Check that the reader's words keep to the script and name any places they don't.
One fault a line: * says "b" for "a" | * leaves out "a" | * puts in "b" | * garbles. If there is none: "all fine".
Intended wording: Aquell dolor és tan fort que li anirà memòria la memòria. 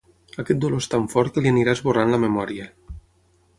* says "Aquest" for "Aquell"
* says "esborrant" for "memòria"